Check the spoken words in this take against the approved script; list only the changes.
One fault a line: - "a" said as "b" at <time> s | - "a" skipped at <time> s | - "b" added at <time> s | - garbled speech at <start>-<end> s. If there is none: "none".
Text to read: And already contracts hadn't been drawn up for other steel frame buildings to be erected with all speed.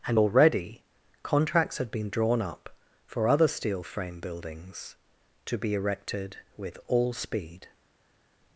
- "hadn't" said as "had" at 1.8 s